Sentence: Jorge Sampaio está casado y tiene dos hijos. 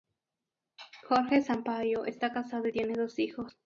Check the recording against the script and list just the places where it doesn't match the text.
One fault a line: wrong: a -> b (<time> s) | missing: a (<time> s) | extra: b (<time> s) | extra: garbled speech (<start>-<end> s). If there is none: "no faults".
no faults